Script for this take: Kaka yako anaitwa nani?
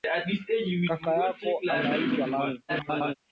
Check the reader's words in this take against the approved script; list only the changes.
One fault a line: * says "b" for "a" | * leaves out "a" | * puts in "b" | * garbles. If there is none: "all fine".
* garbles